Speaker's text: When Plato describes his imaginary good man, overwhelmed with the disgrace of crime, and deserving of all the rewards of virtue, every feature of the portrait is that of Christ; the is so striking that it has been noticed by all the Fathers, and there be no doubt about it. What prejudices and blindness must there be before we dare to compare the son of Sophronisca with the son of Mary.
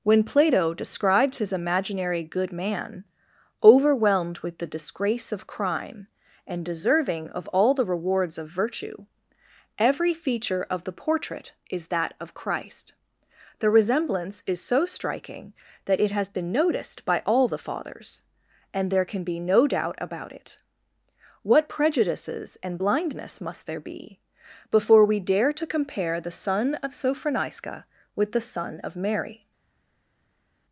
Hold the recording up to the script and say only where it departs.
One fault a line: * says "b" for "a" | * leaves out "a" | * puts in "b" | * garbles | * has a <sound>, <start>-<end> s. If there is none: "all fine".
* puts in "resemblance"
* puts in "can"